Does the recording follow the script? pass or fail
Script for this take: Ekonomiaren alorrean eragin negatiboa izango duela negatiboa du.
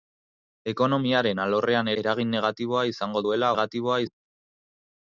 pass